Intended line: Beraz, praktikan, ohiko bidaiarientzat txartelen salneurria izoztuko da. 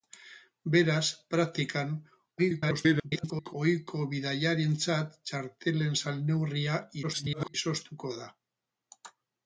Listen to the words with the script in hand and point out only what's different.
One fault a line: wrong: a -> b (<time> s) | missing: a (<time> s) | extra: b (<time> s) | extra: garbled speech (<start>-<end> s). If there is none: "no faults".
extra: garbled speech (2.4-3.5 s)
extra: garbled speech (7.0-7.5 s)